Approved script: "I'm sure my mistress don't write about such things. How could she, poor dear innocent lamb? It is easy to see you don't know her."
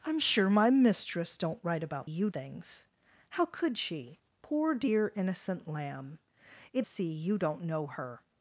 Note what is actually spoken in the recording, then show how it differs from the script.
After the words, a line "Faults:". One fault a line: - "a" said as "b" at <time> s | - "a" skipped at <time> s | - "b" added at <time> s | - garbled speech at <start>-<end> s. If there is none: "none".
"I'm sure my mistress don't write about you things. How could she, poor dear innocent lamb? It see you don't know her."
Faults:
- "such" said as "you" at 2.0 s
- "is easy to" skipped at 6.9 s